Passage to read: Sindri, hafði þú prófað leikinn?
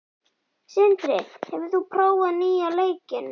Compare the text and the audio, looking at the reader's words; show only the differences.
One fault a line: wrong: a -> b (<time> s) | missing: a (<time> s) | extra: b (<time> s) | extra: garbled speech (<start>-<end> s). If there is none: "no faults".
wrong: hafði -> hefur (1.5 s)
extra: nýja (2.4 s)